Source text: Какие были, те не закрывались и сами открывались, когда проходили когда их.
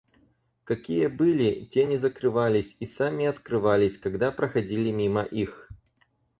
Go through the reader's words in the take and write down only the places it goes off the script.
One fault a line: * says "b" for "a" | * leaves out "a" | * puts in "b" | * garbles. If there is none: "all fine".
* says "мимо" for "когда"